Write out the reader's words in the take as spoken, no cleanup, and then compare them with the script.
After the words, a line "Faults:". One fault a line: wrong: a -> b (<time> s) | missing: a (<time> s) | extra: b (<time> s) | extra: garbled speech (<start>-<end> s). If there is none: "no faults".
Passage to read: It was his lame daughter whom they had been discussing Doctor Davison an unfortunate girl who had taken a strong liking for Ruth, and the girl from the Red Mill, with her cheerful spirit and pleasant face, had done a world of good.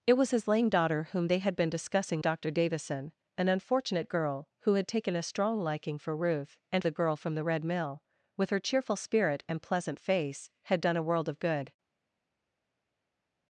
It was his lame daughter whom they had been discussing Doctor Davison an unfortunate girl who had taken a strong liking for Ruth, and the girl from the Red Mill, with her cheerful spirit and pleasant face, had done a world of good.
Faults:
no faults